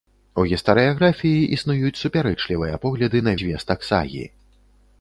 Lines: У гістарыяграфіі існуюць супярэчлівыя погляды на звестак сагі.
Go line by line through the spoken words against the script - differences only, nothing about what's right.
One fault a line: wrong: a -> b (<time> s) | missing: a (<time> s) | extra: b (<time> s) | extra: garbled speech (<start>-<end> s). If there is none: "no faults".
no faults